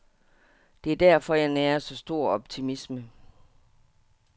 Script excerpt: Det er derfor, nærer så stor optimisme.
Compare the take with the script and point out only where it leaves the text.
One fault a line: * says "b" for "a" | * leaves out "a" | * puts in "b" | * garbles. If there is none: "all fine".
* puts in "jeg"